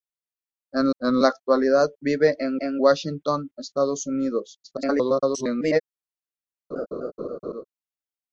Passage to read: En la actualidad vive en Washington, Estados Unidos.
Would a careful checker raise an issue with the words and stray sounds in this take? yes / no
yes